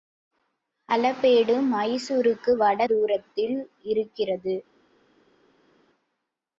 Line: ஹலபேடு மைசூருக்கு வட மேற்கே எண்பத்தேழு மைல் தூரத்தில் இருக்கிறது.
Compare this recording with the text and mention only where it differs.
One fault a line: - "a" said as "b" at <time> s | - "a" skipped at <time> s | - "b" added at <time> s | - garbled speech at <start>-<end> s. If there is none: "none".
- "மேற்கே எண்பத்தேழு மைல்" skipped at 2.9 s